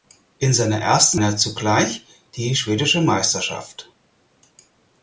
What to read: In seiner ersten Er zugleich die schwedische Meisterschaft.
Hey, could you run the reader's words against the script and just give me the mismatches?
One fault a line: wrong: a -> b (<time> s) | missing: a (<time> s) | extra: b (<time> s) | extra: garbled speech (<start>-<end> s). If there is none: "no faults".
no faults